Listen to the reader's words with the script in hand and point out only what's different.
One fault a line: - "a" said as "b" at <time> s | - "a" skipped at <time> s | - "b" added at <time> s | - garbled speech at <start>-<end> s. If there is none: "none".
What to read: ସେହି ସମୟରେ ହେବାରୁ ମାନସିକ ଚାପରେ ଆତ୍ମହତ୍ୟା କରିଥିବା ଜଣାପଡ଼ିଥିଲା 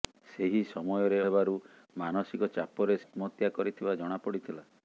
none